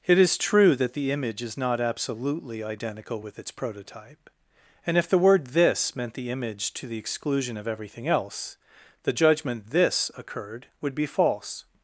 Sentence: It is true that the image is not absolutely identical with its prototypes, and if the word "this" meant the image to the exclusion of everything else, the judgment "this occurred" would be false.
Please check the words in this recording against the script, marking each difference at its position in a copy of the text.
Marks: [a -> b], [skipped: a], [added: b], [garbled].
It is true that the image is not absolutely identical with its [prototypes, -> prototype] and if the word "this" meant the image to the exclusion of everything else, the judgment "this occurred" would be false.